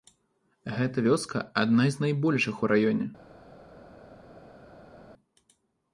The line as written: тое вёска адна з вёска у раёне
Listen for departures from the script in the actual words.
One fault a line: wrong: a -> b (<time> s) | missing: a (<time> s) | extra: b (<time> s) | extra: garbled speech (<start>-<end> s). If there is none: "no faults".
wrong: тое -> гэта (0.8 s)
wrong: вёска -> найбольшых (2.0 s)